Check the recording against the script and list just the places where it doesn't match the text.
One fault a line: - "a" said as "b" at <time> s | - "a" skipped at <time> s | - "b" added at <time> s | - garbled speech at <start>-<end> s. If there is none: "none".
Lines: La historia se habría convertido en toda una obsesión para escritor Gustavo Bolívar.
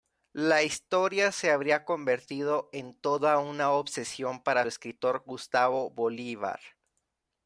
none